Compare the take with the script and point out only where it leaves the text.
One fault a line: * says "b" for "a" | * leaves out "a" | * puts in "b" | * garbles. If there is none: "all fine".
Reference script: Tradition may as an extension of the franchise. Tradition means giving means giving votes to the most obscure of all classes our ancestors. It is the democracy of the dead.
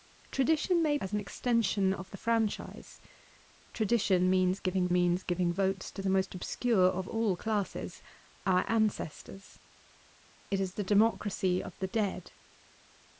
all fine